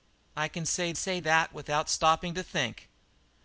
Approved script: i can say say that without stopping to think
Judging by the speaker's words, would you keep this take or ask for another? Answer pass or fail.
pass